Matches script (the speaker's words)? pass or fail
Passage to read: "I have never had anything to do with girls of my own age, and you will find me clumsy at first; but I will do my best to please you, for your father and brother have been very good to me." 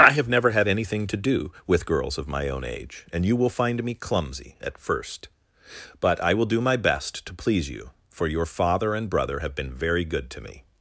pass